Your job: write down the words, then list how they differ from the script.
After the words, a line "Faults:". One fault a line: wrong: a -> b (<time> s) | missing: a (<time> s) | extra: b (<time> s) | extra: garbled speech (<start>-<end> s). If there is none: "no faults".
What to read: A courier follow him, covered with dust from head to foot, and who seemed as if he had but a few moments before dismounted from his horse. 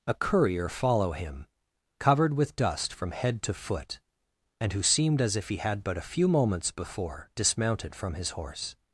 A courier follow him, covered with dust from head to foot, and who seemed as if he had but a few moments before dismounted from his horse.
Faults:
no faults